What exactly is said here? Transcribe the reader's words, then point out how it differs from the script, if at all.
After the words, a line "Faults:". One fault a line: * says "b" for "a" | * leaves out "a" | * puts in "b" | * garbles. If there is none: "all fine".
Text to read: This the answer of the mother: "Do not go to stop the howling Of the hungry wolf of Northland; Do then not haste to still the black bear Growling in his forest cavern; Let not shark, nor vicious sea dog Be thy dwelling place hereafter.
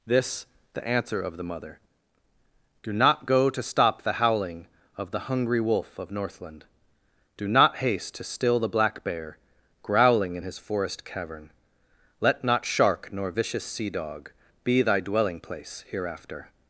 This the answer of the mother: "Do not go to stop the howling Of the hungry wolf of Northland; Do not haste to still the black bear Growling in his forest cavern; Let not shark, nor vicious sea dog Be thy dwelling place hereafter.
Faults:
* leaves out "then"